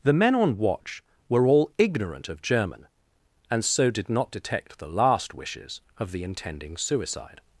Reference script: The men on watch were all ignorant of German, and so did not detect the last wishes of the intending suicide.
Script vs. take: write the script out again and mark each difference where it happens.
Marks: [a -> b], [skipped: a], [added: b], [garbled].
The men on watch were all ignorant of German, and so did not detect the last wishes of the intending suicide.